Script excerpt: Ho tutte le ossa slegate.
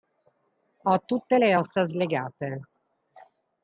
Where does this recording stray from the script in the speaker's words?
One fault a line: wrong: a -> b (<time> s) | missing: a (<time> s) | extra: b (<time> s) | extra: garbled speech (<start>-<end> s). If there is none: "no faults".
no faults